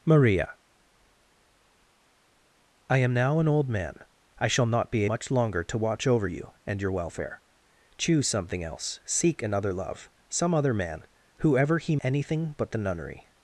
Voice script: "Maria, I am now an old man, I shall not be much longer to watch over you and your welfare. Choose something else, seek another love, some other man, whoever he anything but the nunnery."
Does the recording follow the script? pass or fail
pass